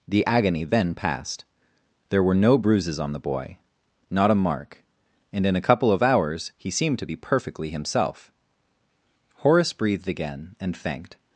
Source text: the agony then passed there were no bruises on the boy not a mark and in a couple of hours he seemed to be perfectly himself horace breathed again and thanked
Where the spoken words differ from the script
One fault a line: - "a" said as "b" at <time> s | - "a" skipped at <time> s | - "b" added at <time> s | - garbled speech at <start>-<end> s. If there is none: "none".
none